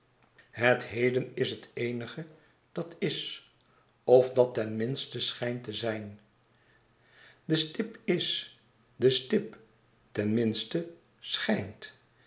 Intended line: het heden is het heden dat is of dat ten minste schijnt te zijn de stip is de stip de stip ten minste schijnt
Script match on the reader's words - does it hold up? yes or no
no